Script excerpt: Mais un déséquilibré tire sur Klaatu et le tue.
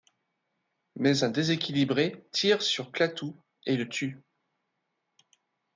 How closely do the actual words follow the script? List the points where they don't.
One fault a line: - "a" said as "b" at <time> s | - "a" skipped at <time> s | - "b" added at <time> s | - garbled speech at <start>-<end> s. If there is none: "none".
none